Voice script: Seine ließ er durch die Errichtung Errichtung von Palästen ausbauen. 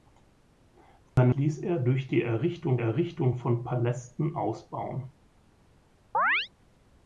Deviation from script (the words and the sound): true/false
true